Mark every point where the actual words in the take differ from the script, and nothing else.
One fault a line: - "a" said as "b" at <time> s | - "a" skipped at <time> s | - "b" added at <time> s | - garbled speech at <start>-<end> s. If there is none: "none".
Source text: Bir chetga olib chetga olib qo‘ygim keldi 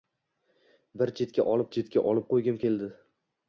none